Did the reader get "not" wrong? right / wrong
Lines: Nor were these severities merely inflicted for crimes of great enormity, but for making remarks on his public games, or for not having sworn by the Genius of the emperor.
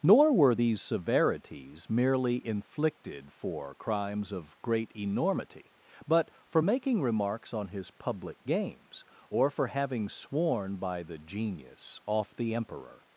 wrong